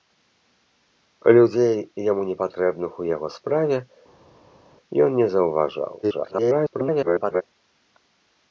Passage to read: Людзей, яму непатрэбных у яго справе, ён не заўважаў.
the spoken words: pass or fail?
fail